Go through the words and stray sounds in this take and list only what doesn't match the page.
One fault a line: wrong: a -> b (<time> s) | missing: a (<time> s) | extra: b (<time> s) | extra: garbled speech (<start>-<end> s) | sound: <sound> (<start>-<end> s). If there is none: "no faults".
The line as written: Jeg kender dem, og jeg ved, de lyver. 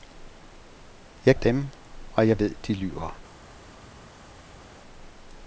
missing: kender (1.4 s)